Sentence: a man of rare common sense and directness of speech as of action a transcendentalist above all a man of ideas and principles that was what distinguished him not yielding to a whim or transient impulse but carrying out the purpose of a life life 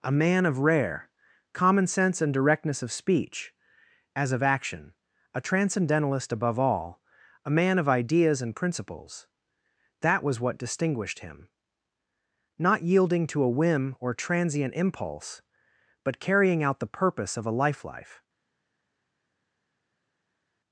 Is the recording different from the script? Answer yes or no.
no